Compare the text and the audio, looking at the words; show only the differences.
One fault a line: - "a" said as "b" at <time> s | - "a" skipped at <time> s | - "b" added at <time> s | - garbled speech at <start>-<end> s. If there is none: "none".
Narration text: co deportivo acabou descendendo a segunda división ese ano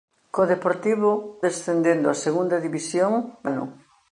- "acabou" skipped at 1.1 s
- "ese" skipped at 3.1 s